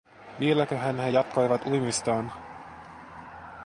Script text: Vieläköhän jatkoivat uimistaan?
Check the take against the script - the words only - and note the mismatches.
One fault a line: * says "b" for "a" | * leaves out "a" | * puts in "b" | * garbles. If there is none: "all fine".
* puts in "he"